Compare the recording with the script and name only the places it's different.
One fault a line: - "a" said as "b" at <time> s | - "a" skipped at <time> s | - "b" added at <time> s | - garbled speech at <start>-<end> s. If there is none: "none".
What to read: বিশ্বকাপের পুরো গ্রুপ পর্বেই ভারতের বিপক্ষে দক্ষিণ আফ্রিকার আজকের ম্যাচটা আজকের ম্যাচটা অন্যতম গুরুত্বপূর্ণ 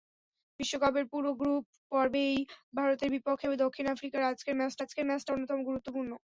none